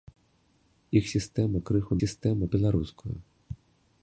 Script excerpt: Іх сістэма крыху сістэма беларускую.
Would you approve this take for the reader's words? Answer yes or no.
yes